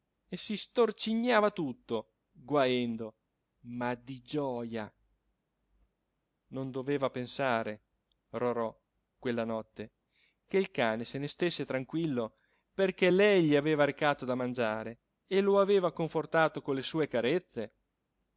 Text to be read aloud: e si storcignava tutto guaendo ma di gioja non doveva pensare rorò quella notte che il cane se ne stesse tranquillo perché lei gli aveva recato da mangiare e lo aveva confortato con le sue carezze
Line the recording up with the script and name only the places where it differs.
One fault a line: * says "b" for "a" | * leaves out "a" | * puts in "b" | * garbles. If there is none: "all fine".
all fine